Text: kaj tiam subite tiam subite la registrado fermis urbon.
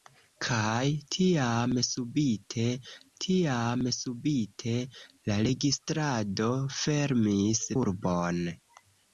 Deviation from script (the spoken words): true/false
false